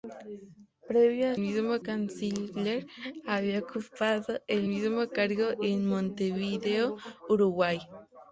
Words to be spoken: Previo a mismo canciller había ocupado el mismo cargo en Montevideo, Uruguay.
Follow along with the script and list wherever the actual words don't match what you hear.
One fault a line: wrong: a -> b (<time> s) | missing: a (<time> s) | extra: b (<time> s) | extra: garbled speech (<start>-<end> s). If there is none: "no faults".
no faults